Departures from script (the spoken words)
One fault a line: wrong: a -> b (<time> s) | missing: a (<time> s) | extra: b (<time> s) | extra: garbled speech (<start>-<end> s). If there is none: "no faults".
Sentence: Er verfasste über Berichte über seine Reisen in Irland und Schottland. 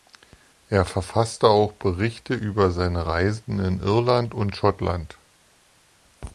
wrong: über -> auch (1.5 s)